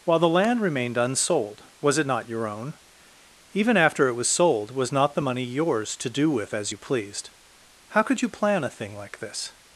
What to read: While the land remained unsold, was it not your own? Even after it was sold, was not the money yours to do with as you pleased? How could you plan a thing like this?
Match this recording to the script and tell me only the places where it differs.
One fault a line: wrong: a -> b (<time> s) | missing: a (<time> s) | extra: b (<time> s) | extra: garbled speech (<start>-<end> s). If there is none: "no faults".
no faults